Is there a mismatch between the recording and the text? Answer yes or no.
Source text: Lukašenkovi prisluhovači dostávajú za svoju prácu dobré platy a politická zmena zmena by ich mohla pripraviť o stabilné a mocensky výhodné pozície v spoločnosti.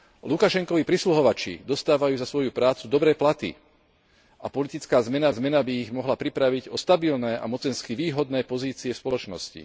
no